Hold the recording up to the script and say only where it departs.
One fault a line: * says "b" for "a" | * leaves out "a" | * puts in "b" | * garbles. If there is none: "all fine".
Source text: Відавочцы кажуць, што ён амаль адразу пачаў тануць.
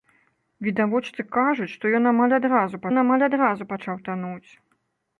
* puts in "ён амаль адразу"